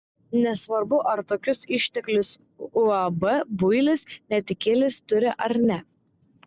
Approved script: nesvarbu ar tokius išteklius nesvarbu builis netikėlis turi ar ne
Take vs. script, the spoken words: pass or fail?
fail